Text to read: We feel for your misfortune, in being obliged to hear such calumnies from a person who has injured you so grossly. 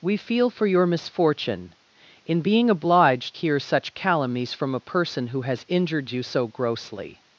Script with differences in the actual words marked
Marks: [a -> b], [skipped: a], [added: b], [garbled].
We feel for your misfortune, in being obliged [skipped: to] hear such calumnies from a person who has injured you so grossly.